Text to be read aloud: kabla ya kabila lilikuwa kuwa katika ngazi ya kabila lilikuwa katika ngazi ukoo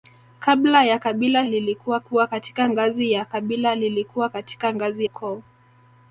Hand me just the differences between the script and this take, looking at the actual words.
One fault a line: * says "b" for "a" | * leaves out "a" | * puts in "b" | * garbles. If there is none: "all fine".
all fine